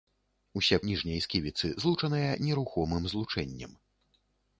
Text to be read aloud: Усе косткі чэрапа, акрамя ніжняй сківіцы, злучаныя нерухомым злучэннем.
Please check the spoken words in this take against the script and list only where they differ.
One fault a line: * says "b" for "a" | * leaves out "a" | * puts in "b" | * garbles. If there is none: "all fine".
* leaves out "косткі чэрапа акрамя"